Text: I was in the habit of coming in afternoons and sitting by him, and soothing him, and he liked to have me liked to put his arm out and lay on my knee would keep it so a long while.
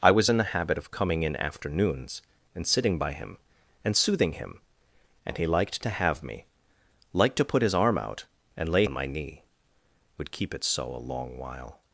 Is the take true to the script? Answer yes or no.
yes